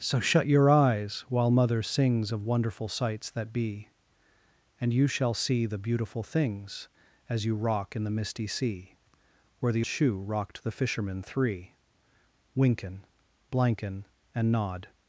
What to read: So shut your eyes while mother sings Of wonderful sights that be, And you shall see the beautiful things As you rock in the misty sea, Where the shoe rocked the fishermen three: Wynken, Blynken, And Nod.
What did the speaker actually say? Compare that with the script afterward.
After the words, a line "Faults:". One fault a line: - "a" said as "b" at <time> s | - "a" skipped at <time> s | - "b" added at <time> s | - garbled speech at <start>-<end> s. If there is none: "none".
So shut your eyes while mother sings Of wonderful sights that be, And you shall see the beautiful things As you rock in the misty sea, Where the shoe rocked the fishermen three: Wynken, Blynken, And Nod.
Faults:
none